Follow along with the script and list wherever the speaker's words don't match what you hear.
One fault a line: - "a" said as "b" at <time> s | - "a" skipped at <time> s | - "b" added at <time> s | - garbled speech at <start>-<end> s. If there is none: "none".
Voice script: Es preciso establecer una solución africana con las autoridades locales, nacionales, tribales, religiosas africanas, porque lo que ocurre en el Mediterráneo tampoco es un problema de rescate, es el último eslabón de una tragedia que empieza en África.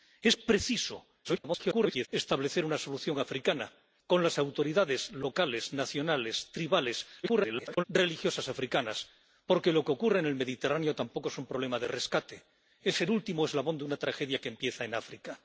- garbled speech at 1.2-2.1 s
- garbled speech at 7.2-7.8 s